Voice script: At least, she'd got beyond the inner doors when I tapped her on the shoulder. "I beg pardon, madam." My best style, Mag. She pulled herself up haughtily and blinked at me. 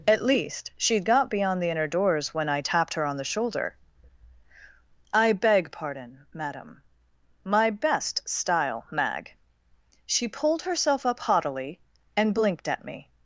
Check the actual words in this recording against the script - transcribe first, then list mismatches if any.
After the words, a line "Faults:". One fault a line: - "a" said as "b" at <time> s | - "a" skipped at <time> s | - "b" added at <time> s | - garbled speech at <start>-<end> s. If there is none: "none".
At least, she'd got beyond the inner doors when I tapped her on the shoulder. "I beg pardon, madam." My best style, Mag. She pulled herself up haughtily and blinked at me.
Faults:
none